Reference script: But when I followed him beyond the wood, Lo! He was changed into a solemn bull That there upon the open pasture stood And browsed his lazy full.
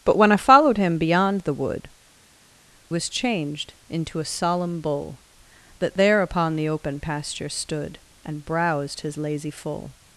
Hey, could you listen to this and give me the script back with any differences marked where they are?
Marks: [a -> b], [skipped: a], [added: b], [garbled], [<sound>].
But when I followed him beyond the wood, [skipped: Lo! He] was changed into a solemn bull That there upon the open pasture stood And browsed his lazy full.